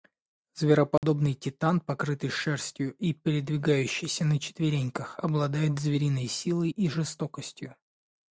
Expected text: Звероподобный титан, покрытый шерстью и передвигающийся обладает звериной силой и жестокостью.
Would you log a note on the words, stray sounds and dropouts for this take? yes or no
yes